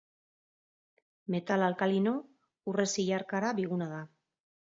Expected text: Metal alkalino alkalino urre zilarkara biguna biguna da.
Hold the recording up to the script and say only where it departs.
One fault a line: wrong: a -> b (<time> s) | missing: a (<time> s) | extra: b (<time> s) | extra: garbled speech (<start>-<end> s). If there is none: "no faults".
missing: alkalino (2.1 s)
missing: biguna (3.9 s)